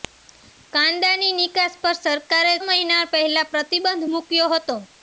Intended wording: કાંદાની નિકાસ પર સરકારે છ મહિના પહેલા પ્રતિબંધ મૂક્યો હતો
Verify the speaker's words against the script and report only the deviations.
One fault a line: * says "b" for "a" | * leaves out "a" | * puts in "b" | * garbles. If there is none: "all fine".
* leaves out "છ"